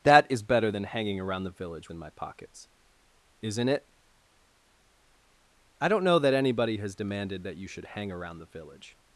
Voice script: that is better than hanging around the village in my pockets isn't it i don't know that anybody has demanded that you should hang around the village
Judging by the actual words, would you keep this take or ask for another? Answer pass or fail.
pass